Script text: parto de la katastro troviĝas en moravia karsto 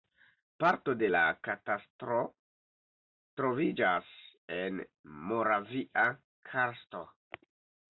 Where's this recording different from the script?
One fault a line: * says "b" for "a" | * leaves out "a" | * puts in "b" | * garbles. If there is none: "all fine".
all fine